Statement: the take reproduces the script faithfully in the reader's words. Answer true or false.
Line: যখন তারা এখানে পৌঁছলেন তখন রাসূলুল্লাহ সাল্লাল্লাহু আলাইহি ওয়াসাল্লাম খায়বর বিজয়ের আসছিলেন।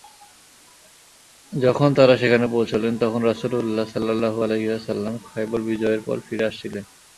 false